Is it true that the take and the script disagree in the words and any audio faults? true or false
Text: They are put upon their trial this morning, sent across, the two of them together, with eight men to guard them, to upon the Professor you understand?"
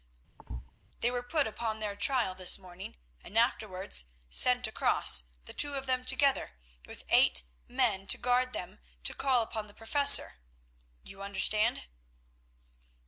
true